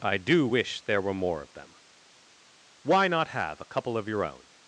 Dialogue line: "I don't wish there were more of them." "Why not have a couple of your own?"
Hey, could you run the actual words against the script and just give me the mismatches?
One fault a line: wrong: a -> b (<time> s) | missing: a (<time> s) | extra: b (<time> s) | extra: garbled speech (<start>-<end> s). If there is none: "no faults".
wrong: don't -> do (0.2 s)